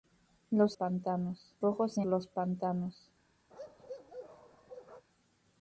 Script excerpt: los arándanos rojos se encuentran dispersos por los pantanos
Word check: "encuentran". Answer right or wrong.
wrong